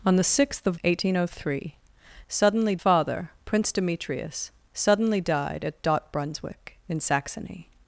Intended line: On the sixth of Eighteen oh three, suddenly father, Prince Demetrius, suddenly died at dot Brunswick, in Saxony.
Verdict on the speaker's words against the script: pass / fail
pass